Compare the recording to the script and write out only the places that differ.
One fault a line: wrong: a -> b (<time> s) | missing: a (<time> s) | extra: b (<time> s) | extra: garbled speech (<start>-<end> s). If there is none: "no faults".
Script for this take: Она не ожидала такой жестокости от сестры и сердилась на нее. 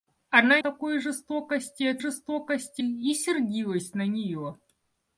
missing: не ожидала (0.6 s)
wrong: сестры -> жестокости (2.0 s)